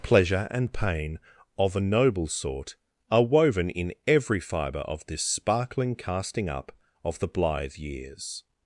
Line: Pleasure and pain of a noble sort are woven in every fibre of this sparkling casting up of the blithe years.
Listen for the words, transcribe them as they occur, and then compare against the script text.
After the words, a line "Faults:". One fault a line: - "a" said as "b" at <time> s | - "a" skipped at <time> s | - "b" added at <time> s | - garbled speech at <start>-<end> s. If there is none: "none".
Pleasure and pain of a noble sort are woven in every fibre of this sparkling casting up of the blithe years.
Faults:
none